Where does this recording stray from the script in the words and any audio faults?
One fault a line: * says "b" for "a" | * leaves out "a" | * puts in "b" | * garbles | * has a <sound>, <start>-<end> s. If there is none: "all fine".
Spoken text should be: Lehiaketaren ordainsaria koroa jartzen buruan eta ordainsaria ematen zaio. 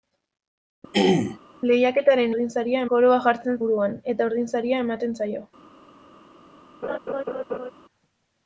* has a throat clearing, 0.9-1.4 s
* has a laugh, 6.8-7.7 s